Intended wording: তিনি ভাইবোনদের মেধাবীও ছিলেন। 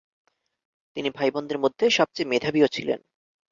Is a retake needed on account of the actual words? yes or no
yes